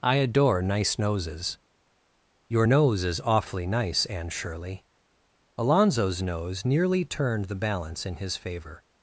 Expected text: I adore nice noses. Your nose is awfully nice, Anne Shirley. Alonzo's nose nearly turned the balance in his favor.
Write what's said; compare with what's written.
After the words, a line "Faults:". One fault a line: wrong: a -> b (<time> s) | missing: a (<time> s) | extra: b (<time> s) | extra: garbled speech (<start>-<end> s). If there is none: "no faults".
I adore nice noses. Your nose is awfully nice, Anne Shirley. Alonzo's nose nearly turned the balance in his favor.
Faults:
no faults